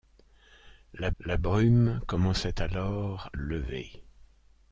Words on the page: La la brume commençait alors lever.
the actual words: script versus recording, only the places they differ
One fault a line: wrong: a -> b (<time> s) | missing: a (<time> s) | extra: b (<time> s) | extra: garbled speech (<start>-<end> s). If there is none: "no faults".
no faults